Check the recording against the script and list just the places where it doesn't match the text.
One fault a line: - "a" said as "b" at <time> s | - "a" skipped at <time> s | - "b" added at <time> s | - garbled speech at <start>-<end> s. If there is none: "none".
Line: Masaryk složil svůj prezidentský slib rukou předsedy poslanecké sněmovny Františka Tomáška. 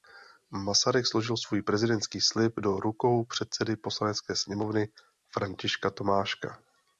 - "do" added at 2.6 s